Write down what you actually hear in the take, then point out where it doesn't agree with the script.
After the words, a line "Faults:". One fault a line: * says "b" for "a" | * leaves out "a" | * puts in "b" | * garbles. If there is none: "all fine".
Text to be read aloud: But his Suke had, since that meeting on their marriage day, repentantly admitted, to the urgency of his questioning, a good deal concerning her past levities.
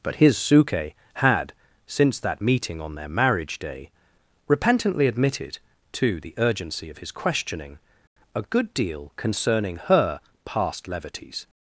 But his Suke had, since that meeting on their marriage day, repentantly admitted, to the urgency of his questioning, a good deal concerning her past levities.
Faults:
all fine